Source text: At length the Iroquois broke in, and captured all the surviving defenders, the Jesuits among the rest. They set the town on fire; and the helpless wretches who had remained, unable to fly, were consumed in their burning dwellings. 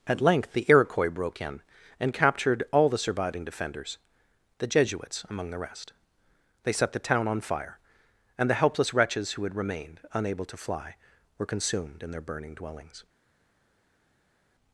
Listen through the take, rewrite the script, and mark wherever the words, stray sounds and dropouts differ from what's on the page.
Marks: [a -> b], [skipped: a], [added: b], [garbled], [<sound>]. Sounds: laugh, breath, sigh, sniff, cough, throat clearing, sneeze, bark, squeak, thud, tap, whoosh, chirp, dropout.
At length the Iroquois broke in, and captured all the surviving defenders, the Jesuits among the rest. They set the town on fire; and the helpless wretches who had remained, unable to fly, were consumed in their burning dwellings.